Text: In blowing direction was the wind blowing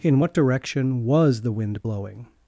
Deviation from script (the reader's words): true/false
true